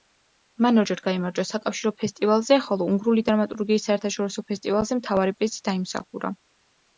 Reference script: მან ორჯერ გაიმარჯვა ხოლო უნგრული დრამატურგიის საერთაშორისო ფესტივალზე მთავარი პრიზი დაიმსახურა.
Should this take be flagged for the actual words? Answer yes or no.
yes